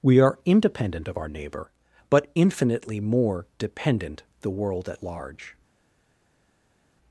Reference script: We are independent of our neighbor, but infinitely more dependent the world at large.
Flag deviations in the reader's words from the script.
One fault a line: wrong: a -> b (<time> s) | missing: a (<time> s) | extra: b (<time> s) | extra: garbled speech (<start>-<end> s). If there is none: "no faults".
no faults